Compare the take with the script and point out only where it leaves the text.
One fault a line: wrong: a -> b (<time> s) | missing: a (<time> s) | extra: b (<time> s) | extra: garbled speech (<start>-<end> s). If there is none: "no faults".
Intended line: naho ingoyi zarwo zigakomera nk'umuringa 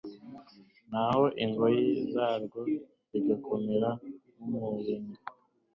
no faults